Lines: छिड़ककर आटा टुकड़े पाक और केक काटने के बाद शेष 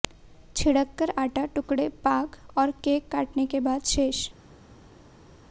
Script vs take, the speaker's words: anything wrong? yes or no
no